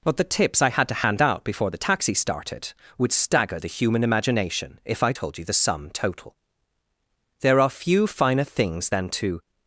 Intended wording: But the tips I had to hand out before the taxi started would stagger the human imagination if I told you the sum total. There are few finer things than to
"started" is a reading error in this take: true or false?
false